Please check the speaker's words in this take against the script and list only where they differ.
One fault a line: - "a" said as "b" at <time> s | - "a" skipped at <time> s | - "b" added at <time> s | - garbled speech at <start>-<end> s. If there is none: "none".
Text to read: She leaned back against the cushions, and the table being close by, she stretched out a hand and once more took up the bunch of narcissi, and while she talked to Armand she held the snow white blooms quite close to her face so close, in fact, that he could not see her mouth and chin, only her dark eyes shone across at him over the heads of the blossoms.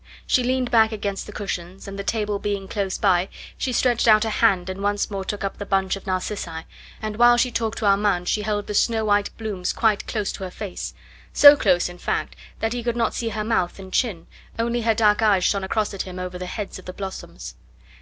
none